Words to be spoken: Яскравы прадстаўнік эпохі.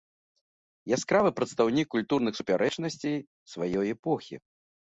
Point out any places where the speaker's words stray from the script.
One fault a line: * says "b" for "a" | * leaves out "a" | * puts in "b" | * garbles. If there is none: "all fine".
* puts in "культурных супярэчнасцей сваёй"